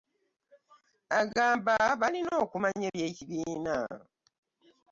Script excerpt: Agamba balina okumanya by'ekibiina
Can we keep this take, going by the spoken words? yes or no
yes